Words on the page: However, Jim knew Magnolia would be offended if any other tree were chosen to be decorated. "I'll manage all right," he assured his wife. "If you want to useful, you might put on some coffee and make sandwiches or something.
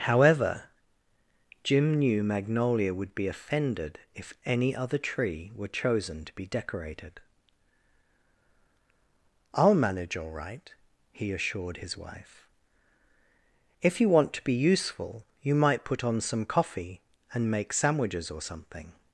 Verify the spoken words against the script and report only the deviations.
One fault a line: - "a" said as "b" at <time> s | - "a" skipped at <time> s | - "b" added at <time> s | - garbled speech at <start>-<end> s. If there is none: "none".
- "be" added at 14.4 s